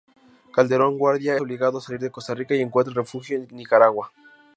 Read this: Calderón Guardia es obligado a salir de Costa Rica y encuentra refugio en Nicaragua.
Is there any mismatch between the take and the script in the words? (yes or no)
yes